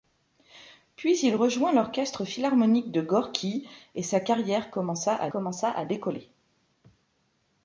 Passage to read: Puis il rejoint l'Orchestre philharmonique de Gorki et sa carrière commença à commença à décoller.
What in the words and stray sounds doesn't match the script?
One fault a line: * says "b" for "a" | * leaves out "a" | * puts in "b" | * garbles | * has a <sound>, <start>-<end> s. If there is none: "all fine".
all fine